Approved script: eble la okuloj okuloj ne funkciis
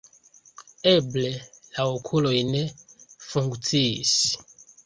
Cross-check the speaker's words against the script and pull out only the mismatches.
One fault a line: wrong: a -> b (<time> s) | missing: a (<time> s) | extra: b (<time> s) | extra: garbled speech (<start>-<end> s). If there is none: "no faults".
missing: okuloj (2.3 s)